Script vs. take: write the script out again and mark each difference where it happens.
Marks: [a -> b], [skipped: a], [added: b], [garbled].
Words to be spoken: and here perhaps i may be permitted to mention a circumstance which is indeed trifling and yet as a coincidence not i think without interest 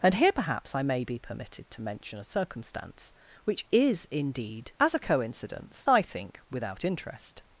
and here perhaps i may be permitted to mention a circumstance which is indeed [skipped: trifling and yet] as a coincidence [skipped: not] i think without interest